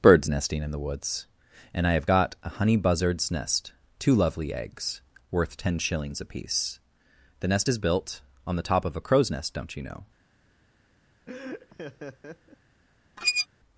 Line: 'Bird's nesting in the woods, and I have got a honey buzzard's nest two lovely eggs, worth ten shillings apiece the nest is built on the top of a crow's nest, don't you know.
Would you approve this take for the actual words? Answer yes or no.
yes